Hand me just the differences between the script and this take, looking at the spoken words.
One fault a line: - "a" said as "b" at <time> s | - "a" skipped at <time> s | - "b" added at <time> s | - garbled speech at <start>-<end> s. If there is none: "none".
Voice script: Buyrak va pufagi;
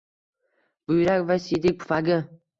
- "siydik" added at 1.4 s